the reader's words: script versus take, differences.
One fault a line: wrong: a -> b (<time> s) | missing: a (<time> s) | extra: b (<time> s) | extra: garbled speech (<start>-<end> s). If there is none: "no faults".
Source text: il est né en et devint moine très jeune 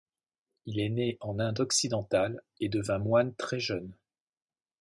extra: inde occidentale (1.4 s)